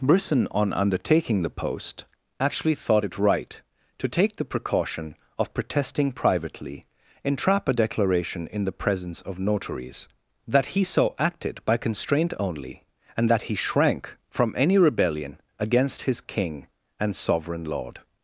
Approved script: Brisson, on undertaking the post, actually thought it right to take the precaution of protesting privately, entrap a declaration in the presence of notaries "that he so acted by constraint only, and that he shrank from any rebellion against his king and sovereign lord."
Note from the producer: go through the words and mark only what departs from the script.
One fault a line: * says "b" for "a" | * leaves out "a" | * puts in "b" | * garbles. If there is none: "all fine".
all fine